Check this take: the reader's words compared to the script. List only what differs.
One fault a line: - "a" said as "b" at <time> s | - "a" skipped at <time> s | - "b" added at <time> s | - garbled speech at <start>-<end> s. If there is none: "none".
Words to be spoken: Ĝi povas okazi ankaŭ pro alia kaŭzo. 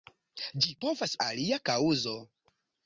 - "okazi ankaŭ pro" skipped at 1.2 s